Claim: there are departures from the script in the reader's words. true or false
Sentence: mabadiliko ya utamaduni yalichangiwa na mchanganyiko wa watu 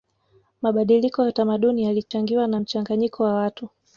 false